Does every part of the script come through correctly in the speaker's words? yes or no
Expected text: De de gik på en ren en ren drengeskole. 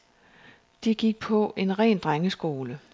no